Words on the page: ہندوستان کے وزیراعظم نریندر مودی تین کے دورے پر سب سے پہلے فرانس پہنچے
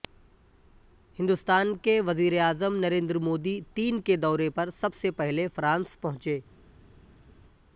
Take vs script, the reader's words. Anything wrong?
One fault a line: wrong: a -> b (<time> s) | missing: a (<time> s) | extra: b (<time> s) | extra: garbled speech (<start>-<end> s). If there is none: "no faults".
no faults